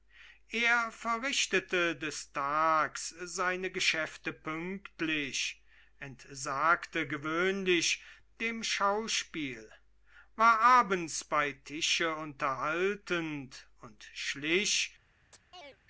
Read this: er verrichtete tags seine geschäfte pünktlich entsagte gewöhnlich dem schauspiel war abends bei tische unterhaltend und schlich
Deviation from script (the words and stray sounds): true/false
true